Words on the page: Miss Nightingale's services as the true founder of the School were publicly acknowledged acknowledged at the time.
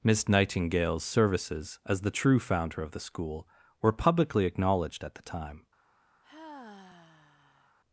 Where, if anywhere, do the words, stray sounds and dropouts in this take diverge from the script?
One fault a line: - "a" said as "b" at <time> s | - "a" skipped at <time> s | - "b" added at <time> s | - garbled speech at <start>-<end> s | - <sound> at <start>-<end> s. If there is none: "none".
- "acknowledged" skipped at 5.0 s
- sigh at 6.2-7.8 s